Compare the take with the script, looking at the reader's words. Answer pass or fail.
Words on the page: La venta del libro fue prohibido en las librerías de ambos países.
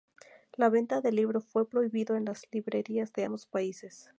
pass